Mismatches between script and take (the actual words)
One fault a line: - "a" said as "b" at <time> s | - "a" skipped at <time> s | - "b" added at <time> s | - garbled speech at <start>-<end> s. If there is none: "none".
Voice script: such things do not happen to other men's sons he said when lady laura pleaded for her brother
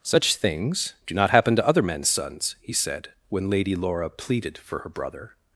none